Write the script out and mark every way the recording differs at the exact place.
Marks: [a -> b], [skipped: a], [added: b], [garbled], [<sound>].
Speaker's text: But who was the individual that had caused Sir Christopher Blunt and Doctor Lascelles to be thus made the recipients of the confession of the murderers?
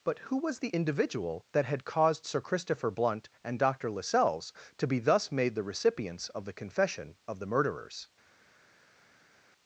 But who was the individual that had caused Sir Christopher Blunt and Doctor Lascelles to be thus made the recipients of the confession of the murderers?